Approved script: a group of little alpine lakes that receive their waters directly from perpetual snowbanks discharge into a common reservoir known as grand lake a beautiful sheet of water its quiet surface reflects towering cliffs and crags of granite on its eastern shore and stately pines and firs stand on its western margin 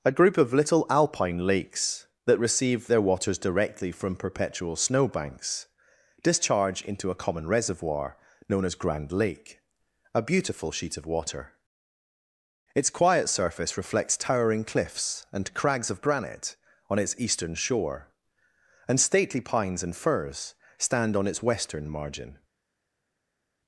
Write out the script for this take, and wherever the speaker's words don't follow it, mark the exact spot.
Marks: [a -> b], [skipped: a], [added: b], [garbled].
a group of little alpine lakes that receive their waters directly from perpetual snowbanks discharge into a common reservoir known as grand lake a beautiful sheet of water its quiet surface reflects towering cliffs and crags of granite on its eastern shore and stately pines and firs stand on its western margin